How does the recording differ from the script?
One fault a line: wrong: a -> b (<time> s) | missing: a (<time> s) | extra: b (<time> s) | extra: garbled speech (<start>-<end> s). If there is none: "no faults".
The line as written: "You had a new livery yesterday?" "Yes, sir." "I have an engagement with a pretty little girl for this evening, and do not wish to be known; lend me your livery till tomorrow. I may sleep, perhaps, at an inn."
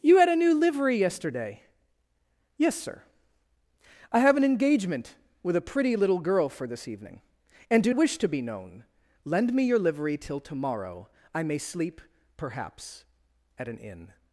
missing: not (7.9 s)